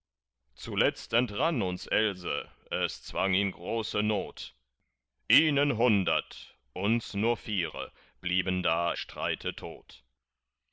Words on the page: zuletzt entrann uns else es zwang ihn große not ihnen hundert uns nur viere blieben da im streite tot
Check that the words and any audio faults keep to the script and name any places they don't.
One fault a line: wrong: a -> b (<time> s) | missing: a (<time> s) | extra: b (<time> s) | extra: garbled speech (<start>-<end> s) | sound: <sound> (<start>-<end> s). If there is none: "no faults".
missing: im (8.9 s)